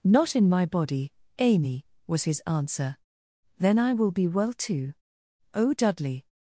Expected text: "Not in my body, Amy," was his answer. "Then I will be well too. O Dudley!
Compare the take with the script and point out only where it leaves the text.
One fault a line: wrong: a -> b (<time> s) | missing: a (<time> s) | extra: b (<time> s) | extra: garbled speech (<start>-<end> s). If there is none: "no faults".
no faults